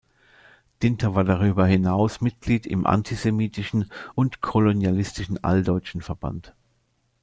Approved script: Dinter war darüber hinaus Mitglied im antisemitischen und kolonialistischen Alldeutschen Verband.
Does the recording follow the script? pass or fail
pass